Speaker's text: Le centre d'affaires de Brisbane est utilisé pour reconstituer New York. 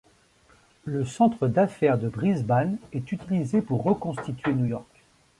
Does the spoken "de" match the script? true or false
true